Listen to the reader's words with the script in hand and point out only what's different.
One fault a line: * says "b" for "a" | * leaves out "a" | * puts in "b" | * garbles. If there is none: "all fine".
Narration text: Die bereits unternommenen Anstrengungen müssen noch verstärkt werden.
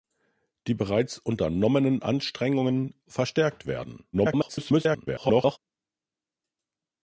* leaves out "müssen noch"
* garbles